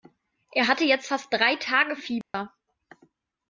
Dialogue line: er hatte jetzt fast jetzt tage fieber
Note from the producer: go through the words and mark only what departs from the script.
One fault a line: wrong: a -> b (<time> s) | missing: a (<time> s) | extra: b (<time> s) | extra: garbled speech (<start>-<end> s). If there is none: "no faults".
wrong: jetzt -> drei (1.3 s)